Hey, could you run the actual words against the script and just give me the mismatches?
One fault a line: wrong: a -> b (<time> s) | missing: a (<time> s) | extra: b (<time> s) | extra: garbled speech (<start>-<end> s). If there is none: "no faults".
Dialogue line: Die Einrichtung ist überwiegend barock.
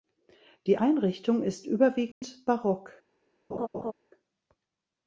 no faults